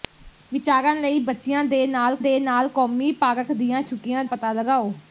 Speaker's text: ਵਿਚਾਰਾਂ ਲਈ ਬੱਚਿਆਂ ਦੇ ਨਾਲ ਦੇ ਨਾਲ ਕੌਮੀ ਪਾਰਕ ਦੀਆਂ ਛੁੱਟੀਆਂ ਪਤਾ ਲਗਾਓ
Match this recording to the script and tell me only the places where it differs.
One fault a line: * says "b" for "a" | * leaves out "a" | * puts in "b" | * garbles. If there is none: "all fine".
all fine